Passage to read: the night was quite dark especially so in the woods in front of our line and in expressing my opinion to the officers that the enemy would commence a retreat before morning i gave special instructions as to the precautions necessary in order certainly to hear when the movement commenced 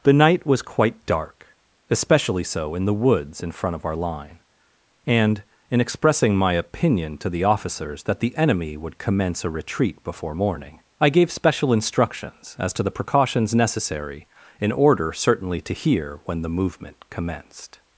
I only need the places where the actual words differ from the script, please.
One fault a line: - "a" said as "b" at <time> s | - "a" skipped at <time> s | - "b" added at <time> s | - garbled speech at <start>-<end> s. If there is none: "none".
none